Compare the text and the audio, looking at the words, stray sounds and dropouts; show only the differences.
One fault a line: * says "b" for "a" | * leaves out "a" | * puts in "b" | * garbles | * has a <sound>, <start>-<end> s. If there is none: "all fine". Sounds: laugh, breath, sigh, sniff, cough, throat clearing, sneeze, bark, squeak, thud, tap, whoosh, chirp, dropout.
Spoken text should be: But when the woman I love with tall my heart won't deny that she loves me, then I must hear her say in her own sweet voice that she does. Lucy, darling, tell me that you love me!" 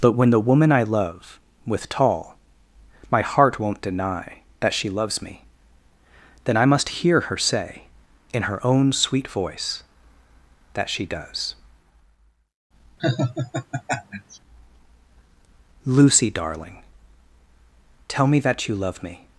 * has a laugh, 13.0-14.4 s